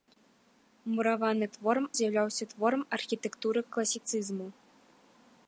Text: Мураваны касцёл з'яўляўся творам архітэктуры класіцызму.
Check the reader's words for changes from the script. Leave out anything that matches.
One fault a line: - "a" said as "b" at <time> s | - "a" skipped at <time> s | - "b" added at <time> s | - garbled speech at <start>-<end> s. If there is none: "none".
- "касцёл" said as "творам" at 1.6 s